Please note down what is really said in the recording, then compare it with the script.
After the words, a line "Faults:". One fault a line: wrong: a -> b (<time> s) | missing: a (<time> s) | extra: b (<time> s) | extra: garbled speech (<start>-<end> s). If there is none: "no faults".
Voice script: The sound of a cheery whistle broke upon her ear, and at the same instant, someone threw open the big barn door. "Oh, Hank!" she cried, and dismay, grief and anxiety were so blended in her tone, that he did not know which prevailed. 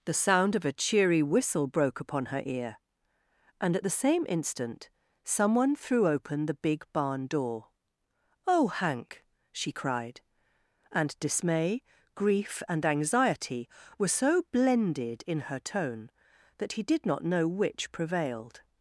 The sound of a cheery whistle broke upon her ear, and at the same instant, someone threw open the big barn door. "Oh, Hank!" she cried, and dismay, grief and anxiety were so blended in her tone, that he did not know which prevailed.
Faults:
no faults